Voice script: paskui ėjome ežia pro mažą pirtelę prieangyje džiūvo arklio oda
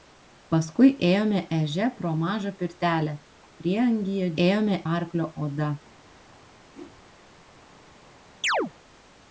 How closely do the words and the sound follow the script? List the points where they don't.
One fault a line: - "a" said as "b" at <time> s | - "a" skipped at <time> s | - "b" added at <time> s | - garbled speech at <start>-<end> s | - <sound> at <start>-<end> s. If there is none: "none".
- "džiūvo" said as "ėjome" at 4.5 s
- whoosh at 6.7-7.0 s
- chirp at 8.4-8.7 s